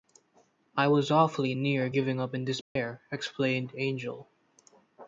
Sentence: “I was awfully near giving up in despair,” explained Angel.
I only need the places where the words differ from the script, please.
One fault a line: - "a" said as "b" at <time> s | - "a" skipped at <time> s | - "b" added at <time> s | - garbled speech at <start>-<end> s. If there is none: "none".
none